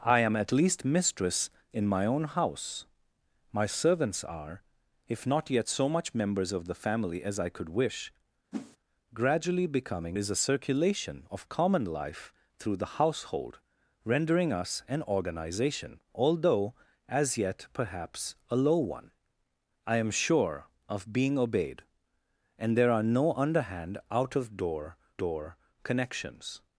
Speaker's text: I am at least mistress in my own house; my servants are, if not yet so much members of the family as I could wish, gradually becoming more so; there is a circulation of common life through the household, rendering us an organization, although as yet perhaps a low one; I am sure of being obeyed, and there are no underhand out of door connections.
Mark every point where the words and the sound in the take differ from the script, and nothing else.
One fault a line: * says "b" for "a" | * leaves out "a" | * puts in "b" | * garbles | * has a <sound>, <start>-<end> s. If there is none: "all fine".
* has a whoosh, 8.5-8.8 s
* leaves out "more so there"
* puts in "door"